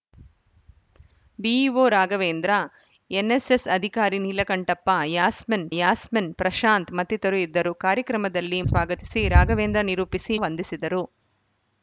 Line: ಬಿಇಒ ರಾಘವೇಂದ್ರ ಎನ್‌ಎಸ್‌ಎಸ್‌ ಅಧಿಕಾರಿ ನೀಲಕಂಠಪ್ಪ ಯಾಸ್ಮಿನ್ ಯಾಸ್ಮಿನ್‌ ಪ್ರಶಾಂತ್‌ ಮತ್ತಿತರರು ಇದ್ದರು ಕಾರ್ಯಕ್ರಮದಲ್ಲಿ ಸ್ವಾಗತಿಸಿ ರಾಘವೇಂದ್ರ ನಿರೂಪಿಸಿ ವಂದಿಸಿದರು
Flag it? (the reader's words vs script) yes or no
no